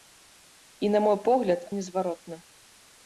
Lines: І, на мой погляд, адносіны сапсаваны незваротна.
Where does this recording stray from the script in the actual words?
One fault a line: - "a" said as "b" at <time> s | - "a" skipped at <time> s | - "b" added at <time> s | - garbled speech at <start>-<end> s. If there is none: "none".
- "адносіны сапсаваны" skipped at 1.7 s